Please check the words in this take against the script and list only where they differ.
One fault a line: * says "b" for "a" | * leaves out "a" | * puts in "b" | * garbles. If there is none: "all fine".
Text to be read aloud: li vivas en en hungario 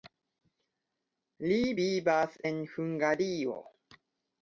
* leaves out "en"